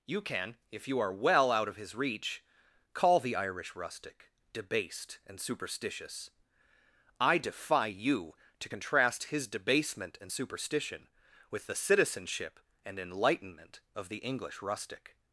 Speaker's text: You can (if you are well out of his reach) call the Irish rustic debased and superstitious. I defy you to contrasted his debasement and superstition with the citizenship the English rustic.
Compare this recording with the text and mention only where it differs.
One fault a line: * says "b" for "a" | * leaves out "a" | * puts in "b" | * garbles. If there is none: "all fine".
* says "contrast" for "contrasted"
* puts in "and enlightenment of"